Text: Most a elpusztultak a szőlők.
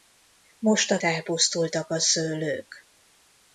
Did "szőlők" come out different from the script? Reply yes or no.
no